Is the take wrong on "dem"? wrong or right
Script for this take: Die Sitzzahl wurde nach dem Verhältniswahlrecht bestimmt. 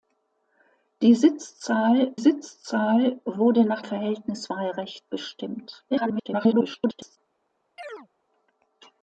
wrong